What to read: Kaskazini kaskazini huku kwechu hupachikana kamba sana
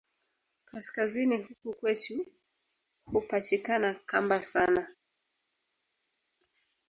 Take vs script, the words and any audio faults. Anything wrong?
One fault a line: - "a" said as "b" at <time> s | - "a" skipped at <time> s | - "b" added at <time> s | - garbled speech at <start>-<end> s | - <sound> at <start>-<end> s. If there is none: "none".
- "kaskazini" skipped at 1.4 s